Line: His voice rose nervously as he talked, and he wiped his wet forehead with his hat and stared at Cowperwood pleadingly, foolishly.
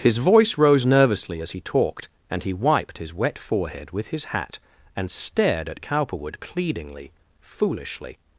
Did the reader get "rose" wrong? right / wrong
right